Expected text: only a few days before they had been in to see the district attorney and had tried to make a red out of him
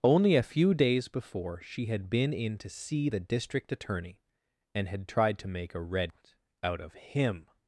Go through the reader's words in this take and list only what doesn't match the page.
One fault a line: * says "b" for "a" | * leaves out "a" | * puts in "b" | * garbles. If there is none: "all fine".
* says "she" for "they"